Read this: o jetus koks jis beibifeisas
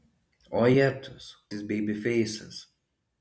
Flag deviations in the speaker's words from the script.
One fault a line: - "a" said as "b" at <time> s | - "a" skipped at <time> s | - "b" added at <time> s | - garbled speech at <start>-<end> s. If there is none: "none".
- "koks" skipped at 1.2 s